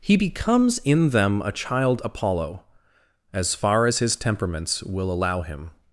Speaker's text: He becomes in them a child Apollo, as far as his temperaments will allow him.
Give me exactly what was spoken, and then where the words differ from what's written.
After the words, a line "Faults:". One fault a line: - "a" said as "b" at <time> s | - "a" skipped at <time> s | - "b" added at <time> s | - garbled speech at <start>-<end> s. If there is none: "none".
He becomes in them a child Apollo, as far as his temperaments will allow him.
Faults:
none